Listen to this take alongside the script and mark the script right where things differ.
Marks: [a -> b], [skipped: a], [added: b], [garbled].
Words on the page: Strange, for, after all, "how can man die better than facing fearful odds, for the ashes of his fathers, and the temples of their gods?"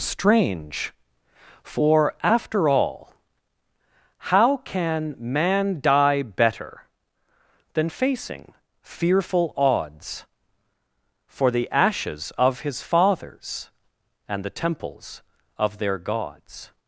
Strange, for, after all, "how can man die better than facing fearful odds, for the ashes of his fathers, and the temples of their gods?"